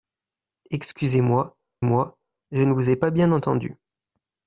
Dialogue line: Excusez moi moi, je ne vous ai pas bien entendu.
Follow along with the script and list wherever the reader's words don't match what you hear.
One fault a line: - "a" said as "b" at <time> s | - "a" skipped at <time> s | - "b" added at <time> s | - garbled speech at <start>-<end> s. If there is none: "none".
none